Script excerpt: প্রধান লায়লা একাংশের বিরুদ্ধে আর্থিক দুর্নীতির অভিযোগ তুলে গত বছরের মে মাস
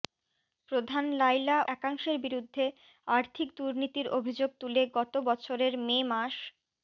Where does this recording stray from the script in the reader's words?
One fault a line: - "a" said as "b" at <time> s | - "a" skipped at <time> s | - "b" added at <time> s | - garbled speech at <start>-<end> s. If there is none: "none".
none